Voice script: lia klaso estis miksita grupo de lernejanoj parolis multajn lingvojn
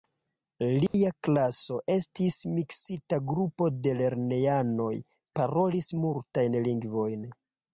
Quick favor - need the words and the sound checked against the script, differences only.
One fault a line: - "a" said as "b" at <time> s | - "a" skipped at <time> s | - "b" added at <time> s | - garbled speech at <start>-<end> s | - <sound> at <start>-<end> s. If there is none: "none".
- dropout at 0.9-0.9 s